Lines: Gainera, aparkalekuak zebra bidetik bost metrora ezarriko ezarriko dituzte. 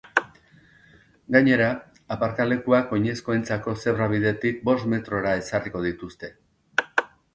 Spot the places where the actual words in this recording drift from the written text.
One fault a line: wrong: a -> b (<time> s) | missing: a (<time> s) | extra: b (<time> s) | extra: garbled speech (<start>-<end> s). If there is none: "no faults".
extra: oinezkoentzako (3.0 s)
missing: ezarriko (5.8 s)